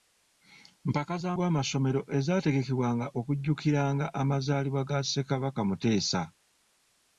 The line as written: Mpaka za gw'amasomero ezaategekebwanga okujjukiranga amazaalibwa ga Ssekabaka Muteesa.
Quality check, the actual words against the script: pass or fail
pass